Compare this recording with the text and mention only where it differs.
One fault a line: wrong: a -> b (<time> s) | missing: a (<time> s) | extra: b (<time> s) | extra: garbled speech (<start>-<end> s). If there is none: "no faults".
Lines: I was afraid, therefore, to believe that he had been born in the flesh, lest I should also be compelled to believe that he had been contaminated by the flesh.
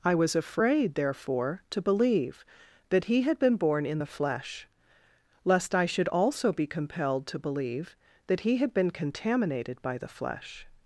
no faults